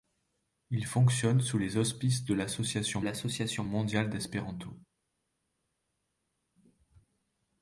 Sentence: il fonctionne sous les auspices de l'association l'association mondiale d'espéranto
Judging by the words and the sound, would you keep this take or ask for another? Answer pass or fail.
pass